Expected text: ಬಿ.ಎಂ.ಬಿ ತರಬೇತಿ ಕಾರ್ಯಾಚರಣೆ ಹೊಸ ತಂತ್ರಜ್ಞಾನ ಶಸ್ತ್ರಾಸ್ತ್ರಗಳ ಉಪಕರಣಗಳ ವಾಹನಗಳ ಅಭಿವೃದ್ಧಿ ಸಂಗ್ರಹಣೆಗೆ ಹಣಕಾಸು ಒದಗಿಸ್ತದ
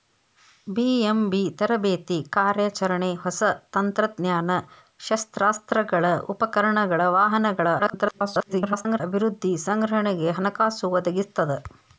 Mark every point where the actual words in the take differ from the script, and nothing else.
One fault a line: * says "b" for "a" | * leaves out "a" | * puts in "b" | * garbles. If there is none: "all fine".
* garbles